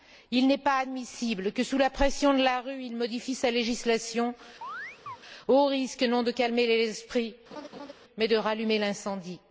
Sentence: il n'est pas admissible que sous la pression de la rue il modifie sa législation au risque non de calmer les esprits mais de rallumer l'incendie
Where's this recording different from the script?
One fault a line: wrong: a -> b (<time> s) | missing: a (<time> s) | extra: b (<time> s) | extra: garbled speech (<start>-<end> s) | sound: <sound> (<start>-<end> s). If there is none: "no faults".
sound: chirp (4.6-5.2 s)
sound: laugh (7.5-7.9 s)